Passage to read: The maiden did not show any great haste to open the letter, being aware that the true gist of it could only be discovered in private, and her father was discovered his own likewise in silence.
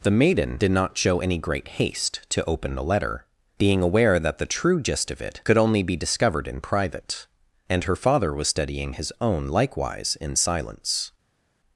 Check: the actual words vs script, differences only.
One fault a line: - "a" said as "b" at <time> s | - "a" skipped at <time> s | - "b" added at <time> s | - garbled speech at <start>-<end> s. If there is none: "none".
- "discovered" said as "studying" at 8.5 s